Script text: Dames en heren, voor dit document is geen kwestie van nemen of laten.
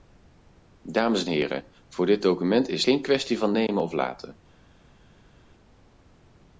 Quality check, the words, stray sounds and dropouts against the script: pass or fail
pass